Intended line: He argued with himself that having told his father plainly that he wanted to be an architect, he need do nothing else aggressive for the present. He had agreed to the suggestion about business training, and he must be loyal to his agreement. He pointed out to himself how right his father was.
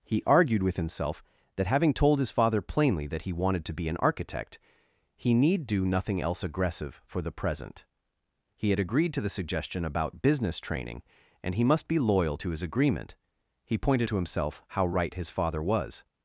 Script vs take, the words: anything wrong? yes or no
yes